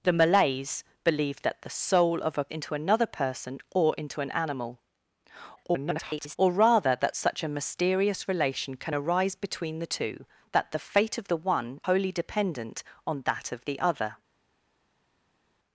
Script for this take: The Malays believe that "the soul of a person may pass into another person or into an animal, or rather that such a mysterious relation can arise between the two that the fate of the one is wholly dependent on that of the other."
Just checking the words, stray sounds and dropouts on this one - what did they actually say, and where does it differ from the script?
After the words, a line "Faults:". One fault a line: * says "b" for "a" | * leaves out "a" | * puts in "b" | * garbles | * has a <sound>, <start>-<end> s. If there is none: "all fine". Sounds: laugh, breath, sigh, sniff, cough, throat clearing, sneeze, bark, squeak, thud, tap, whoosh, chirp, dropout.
The Malays believe that "the soul of a into another person or into an animal, [garbled] or rather that such a mysterious relation can arise between the two that the fate of the one wholly dependent on that of the other."
Faults:
* leaves out "person may pass"
* garbles
* leaves out "is"